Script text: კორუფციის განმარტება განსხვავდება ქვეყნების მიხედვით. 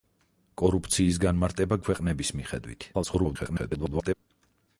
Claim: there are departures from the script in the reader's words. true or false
true